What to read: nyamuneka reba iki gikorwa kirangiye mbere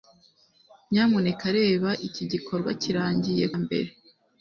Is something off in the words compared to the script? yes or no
no